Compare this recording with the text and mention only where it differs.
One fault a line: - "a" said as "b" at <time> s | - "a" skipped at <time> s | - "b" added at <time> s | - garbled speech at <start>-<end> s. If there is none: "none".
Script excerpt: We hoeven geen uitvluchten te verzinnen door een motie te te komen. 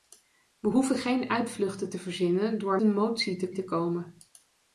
none